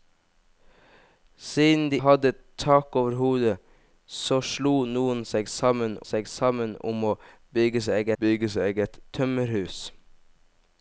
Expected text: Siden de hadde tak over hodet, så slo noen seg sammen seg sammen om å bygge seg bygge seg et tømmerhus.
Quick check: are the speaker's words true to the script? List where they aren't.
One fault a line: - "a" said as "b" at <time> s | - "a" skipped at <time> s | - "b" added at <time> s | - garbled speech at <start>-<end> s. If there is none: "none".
none